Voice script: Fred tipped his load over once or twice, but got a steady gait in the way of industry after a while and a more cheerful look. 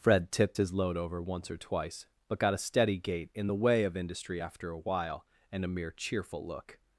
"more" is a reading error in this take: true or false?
true